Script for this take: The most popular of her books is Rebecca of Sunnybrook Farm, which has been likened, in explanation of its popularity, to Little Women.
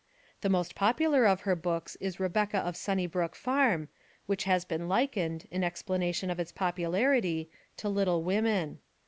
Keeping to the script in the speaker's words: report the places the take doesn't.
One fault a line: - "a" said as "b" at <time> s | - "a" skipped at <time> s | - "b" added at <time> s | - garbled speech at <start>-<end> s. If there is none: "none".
none